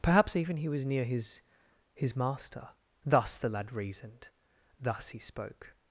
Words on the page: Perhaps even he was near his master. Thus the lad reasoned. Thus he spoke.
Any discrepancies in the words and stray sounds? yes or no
yes